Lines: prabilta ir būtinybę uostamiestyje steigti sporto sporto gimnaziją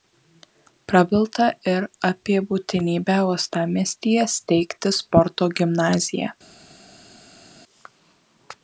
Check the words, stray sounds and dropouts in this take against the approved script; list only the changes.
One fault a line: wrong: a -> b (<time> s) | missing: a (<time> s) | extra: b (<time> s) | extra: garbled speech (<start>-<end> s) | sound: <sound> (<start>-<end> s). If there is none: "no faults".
extra: apie (2.1 s)
missing: sporto (5.5 s)